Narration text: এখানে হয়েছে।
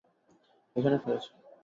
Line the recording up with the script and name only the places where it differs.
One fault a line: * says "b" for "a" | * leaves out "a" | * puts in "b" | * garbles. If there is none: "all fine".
all fine